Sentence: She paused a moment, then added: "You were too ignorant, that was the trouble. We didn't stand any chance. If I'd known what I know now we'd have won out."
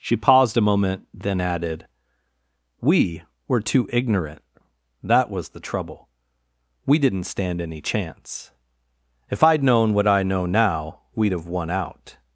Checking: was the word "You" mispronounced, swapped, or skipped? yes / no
yes